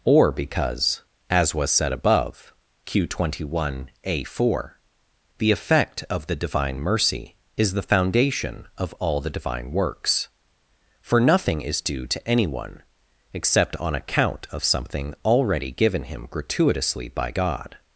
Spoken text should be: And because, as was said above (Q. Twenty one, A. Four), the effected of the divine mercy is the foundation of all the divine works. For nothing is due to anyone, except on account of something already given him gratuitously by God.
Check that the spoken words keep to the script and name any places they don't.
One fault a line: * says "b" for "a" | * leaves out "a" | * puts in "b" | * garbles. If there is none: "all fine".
* says "Or" for "And"
* says "effect" for "effected"